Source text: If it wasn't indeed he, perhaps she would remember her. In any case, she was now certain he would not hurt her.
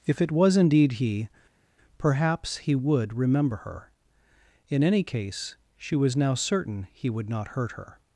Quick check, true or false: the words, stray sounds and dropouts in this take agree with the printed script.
false